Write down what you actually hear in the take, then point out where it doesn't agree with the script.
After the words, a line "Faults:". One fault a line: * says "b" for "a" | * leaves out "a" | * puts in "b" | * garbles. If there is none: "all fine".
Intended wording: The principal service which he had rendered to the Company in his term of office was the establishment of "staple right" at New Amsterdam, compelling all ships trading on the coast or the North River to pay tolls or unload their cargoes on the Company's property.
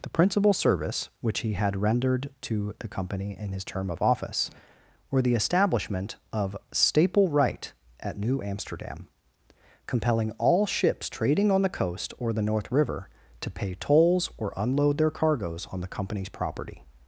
The principal service which he had rendered to the Company in his term of office were the establishment of "staple right" at New Amsterdam, compelling all ships trading on the coast or the North River to pay tolls or unload their cargoes on the Company's property.
Faults:
* says "were" for "was"